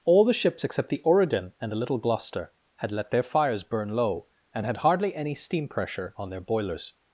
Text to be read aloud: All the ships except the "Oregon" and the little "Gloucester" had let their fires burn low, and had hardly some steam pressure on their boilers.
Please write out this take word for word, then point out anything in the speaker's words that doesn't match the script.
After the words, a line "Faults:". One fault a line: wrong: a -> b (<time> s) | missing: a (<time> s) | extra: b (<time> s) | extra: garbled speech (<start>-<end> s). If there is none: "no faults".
All the ships except the "Oregon" and the little "Gloucester" had let their fires burn low, and had hardly any steam pressure on their boilers.
Faults:
wrong: some -> any (5.1 s)